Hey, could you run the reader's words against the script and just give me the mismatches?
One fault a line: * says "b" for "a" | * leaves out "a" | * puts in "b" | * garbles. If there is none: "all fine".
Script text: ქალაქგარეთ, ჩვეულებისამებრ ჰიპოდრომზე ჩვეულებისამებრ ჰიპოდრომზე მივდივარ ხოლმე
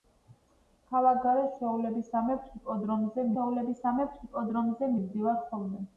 all fine